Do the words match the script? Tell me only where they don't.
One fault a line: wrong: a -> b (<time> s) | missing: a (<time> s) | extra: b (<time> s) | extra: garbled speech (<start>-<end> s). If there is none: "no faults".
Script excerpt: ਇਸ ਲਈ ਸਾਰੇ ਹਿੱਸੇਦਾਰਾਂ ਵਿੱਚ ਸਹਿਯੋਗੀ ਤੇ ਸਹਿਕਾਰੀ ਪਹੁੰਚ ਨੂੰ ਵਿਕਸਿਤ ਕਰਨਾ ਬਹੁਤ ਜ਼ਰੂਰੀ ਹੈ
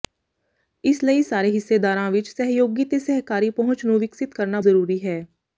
missing: ਬਹੁਤ (4.6 s)